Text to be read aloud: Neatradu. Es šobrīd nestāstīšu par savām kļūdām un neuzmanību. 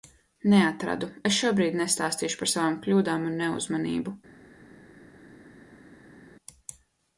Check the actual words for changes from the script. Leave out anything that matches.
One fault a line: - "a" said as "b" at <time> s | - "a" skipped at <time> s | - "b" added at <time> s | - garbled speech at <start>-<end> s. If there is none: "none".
none